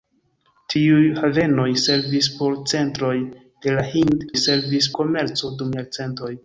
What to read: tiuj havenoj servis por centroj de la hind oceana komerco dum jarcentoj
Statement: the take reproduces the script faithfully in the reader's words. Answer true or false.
false